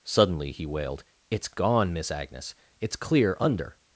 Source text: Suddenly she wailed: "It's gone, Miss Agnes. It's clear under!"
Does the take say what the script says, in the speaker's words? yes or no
no